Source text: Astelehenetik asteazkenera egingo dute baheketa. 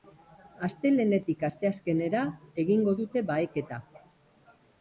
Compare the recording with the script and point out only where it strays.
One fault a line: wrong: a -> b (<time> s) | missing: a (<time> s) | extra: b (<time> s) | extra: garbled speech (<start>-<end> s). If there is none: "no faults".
no faults